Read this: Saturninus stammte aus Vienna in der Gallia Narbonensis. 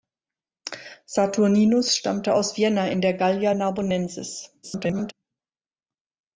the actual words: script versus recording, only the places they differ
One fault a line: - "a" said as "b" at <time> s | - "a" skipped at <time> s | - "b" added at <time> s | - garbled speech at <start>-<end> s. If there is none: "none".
- garbled speech at 4.6-5.1 s